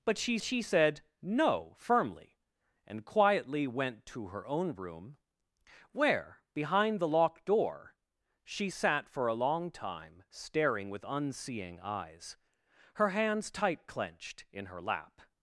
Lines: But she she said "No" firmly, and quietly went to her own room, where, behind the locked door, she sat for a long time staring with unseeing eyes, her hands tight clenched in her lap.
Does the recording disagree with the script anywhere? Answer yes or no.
no